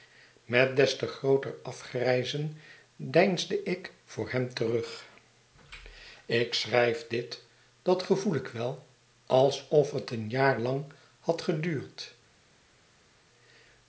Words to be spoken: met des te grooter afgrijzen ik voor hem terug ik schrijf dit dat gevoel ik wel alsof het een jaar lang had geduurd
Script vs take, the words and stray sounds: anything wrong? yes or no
yes